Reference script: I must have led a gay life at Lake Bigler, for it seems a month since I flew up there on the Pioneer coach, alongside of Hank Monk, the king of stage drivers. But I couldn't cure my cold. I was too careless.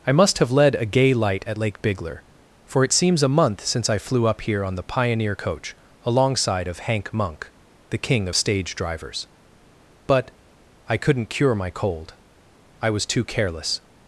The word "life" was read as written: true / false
false